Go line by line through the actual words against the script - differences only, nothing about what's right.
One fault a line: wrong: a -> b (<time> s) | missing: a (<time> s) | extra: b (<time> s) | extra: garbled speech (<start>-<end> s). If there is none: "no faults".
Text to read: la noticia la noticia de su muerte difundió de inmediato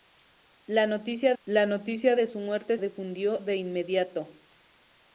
no faults